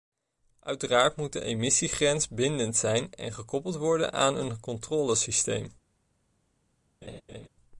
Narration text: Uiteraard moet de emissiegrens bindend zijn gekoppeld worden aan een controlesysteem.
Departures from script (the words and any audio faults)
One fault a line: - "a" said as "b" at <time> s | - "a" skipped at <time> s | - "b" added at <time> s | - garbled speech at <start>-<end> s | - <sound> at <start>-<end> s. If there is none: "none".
- "en" added at 3.1 s
- laugh at 7.0-7.5 s